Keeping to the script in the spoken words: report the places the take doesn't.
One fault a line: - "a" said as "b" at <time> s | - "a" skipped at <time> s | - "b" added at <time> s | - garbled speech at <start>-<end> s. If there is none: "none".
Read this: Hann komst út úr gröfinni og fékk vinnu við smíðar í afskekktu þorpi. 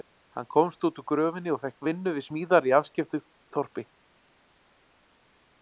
none